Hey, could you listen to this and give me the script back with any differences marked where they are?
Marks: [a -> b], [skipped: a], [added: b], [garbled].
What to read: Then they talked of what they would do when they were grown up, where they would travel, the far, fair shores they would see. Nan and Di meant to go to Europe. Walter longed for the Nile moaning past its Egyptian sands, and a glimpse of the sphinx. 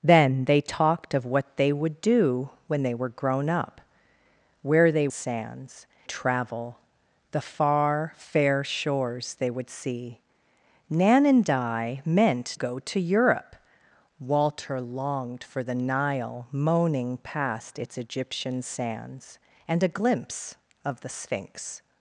Then they talked of what they would do when they were grown up, where they [would -> sands] travel, the far, fair shores they would see. Nan and Di meant [skipped: to] go to Europe. Walter longed for the Nile moaning past its Egyptian sands, and a glimpse of the sphinx.